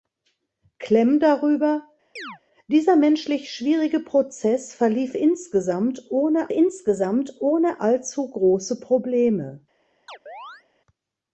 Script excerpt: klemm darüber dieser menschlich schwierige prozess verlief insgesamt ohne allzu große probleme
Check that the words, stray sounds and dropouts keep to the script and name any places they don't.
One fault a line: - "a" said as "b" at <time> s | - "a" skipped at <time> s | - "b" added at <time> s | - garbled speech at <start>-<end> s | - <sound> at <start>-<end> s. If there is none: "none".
- chirp at 2.2-2.4 s
- "insgesamt ohne" added at 6.5 s
- chirp at 10.1-10.6 s